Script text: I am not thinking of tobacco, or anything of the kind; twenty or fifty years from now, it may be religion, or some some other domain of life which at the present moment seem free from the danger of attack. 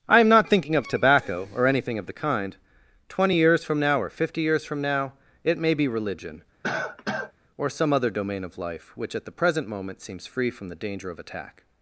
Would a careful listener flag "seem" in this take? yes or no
yes